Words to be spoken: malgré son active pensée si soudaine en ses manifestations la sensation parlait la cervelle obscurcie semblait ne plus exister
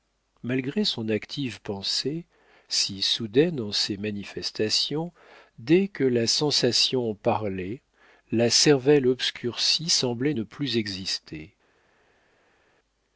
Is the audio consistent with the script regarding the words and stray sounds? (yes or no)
no